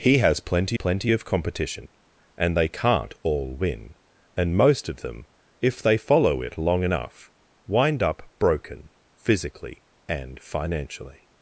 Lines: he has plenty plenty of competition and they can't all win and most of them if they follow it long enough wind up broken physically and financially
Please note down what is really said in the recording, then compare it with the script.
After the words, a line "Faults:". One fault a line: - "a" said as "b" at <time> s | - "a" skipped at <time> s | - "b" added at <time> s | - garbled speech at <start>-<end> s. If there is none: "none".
he has plenty plenty of competition and they can't all win and most of them if they follow it long enough wind up broken physically and financially
Faults:
none